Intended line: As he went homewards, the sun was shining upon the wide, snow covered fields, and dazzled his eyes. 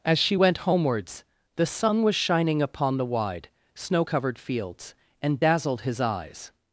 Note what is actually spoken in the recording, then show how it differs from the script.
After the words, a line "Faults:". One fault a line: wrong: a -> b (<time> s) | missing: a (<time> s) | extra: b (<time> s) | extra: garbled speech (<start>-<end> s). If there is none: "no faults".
As she went homewards, the sun was shining upon the wide, snow covered fields, and dazzled his eyes.
Faults:
wrong: he -> she (0.2 s)